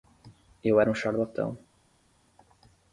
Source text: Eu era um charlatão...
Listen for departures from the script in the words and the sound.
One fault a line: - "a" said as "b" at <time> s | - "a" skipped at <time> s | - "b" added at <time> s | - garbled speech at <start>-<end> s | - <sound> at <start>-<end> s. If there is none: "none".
none